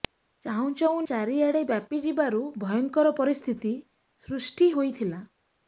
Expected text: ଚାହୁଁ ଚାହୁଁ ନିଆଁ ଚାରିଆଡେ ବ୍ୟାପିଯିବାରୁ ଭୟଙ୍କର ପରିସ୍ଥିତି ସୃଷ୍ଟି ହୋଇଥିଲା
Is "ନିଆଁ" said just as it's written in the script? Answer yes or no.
no